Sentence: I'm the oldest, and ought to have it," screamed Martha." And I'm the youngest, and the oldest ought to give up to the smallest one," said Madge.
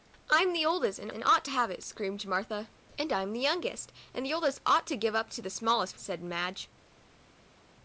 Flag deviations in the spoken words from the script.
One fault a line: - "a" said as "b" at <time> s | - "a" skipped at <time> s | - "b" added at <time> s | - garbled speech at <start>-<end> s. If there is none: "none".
- "and" added at 1.1 s
- "one" skipped at 6.0 s